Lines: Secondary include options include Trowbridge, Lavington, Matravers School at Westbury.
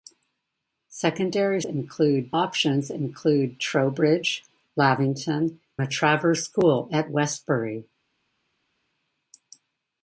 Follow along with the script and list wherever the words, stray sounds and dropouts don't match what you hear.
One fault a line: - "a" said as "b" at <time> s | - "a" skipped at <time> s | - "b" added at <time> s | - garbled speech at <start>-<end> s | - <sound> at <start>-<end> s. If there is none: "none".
none